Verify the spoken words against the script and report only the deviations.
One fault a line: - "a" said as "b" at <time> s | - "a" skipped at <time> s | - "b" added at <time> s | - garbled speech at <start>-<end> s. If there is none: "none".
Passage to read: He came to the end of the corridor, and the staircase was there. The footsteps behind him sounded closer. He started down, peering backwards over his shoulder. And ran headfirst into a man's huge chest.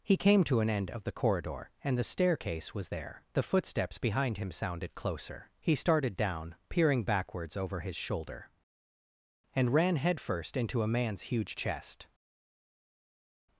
- "the" said as "an" at 0.6 s